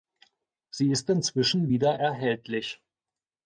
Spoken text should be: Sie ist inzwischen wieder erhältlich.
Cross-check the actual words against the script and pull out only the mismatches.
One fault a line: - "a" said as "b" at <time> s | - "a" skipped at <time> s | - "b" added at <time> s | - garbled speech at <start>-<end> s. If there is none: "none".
none